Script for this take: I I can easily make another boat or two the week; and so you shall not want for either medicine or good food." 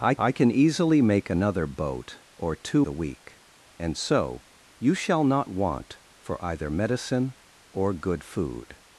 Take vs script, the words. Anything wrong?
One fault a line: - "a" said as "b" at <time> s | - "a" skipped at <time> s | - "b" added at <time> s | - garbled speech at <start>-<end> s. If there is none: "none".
none